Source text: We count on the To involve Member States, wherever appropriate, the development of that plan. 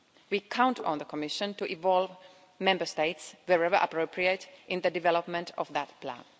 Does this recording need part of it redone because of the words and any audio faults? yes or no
yes